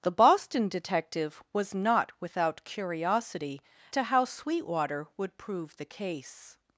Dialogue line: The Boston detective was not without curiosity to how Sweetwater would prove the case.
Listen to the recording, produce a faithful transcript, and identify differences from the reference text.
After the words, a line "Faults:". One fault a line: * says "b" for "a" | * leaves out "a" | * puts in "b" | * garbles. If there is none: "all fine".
The Boston detective was not without curiosity to how Sweetwater would prove the case.
Faults:
all fine